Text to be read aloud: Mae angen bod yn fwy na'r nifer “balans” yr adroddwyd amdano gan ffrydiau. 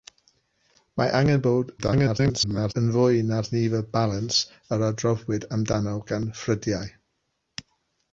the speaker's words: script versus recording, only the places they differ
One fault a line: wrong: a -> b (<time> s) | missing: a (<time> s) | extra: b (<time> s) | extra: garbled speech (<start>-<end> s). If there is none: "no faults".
extra: garbled speech (1.8-2.7 s)